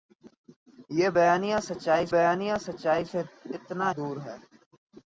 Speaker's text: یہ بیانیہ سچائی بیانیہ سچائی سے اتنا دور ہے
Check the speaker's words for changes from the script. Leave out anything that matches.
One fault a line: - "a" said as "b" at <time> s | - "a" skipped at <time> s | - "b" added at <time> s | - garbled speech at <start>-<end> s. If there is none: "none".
none